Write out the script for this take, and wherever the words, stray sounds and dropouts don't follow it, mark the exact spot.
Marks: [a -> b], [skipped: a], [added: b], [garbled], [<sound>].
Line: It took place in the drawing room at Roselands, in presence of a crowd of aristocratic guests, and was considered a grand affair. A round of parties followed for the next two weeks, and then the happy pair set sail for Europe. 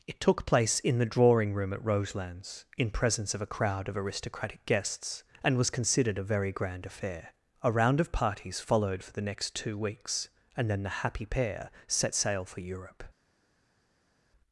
It took place in the drawing room at Roselands, in presence of a crowd of aristocratic guests, and was considered a [added: very] grand affair. A round of parties followed for the next two weeks, and then the happy pair set sail for Europe.